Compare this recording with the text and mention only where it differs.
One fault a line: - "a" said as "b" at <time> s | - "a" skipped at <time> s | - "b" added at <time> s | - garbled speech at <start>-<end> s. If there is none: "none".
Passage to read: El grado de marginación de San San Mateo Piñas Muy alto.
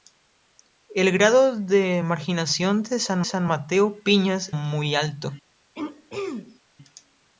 none